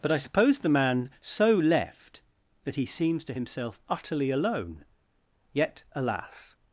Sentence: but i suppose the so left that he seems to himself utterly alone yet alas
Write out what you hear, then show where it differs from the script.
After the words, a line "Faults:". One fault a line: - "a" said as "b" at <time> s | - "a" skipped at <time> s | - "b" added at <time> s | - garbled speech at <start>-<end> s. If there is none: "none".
but i suppose the man so left that he seems to himself utterly alone yet alas
Faults:
- "man" added at 0.7 s